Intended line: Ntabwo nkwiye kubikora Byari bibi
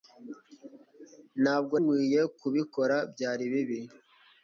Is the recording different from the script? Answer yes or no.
no